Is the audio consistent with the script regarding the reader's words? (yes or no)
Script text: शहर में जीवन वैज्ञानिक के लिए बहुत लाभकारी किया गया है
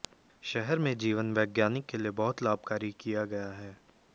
yes